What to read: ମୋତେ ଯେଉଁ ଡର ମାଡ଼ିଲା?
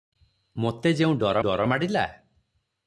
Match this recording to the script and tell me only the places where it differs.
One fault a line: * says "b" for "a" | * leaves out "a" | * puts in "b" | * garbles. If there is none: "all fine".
* puts in "ଡର"